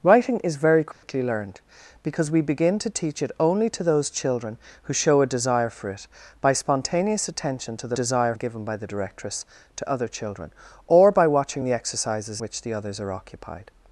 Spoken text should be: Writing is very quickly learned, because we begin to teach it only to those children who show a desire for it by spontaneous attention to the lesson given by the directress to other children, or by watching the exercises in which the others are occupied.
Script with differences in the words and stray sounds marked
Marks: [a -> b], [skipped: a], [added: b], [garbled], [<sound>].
Writing is very quickly [dropout] learned, because we begin to teach it only to those children who show a desire for it by spontaneous attention to the [lesson -> desire] given by the directress to other children, or by watching the exercises [skipped: in] which the others are occupied.